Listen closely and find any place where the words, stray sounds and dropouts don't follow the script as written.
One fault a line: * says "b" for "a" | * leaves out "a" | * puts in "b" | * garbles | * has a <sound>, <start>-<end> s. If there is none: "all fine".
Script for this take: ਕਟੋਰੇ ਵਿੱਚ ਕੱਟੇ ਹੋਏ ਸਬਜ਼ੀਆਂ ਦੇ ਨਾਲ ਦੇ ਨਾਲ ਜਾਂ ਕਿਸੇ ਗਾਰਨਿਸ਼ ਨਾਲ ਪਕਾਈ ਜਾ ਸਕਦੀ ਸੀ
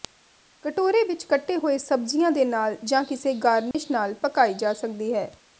* leaves out "ਦੇ ਨਾਲ"
* has a dropout, 3.7-3.7 s
* says "ਹੈ" for "ਸੀ"